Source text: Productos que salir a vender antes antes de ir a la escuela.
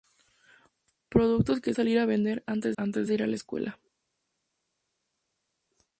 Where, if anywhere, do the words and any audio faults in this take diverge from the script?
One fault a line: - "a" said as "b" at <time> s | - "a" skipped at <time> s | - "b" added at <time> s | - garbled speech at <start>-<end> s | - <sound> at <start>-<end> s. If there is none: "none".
none